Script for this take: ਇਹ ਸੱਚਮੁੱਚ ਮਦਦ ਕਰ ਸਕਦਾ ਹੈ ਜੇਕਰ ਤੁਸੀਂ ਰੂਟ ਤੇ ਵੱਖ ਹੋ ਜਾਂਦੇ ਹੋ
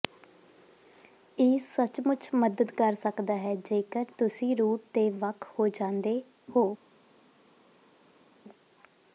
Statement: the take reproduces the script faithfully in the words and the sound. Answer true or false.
true